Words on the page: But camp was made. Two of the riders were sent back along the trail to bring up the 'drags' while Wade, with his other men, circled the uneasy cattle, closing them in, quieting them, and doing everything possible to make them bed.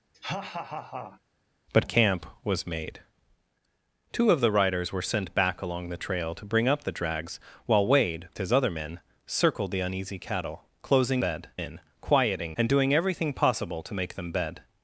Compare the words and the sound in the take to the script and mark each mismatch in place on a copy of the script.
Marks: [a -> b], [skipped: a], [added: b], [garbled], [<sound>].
[laugh] But camp was made. Two of the riders were sent back along the trail to bring up the 'drags' while Wade, [skipped: with] his other men, circled the uneasy cattle, closing [them -> bed] in, quieting [skipped: them,] and doing everything possible to make them bed.